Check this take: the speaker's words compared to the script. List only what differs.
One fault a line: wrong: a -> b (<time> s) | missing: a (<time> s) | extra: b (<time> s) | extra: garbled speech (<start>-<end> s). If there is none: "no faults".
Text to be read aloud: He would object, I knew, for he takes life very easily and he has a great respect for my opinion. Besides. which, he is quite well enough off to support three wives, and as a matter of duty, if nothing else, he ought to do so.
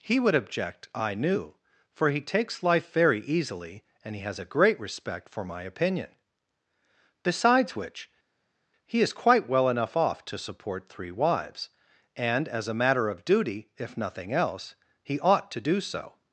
no faults